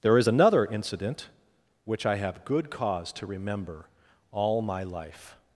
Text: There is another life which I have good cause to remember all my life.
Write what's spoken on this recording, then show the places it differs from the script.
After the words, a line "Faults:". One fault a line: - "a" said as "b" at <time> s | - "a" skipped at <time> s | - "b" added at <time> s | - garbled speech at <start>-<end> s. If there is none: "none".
There is another incident which I have good cause to remember all my life.
Faults:
- "life" said as "incident" at 0.7 s